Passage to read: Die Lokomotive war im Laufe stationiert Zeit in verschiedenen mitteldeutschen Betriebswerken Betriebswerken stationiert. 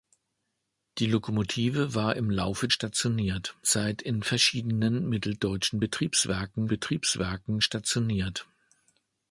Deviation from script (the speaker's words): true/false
false